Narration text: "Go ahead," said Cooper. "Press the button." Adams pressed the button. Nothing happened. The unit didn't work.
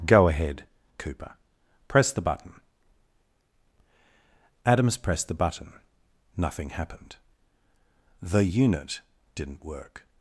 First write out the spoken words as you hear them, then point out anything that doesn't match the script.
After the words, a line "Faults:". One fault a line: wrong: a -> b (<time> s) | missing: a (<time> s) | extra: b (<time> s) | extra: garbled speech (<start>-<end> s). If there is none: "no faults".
"Go ahead," Cooper. "Press the button." Adams pressed the button. Nothing happened. The unit didn't work.
Faults:
missing: said (0.7 s)